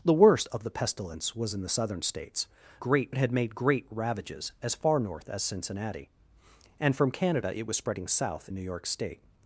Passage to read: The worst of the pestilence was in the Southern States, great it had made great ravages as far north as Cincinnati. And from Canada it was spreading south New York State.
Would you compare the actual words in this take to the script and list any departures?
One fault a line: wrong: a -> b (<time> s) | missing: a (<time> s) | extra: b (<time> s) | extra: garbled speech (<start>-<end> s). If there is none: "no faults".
no faults